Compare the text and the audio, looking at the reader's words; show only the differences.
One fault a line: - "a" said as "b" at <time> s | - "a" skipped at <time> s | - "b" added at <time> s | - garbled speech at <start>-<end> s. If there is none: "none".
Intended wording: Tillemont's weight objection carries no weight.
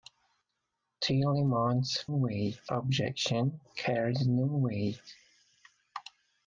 none